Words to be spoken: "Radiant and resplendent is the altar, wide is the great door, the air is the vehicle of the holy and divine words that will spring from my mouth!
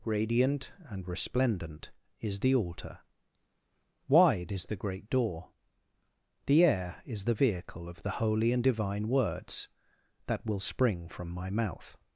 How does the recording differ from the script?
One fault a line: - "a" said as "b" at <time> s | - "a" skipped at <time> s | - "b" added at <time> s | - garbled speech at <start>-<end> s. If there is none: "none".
none